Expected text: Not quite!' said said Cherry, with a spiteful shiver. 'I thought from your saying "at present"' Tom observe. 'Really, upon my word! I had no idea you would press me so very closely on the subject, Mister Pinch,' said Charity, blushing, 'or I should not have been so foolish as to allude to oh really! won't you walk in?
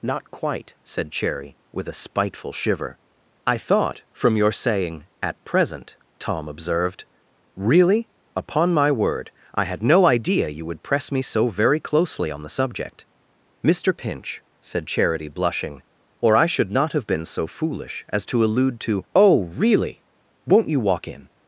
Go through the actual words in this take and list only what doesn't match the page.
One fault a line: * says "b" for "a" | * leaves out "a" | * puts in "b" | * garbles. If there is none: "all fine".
* leaves out "said"
* says "observed" for "observe"